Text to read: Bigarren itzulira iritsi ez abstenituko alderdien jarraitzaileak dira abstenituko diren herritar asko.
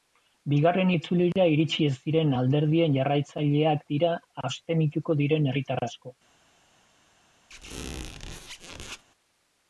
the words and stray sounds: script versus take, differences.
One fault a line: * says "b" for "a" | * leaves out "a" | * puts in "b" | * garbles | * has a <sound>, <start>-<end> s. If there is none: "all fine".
* says "diren" for "abstenituko"
* has a squeak, 7.5-9.0 s